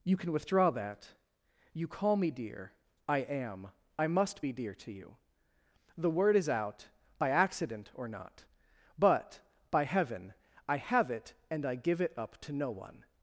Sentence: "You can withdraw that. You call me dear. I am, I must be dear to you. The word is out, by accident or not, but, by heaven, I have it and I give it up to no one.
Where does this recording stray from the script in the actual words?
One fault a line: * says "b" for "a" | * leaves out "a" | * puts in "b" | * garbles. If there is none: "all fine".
all fine